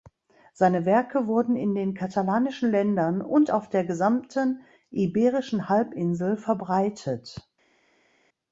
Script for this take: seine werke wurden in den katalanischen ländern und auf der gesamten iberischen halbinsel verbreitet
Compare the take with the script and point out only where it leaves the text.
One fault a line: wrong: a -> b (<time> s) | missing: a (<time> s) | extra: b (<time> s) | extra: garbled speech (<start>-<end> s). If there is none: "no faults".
no faults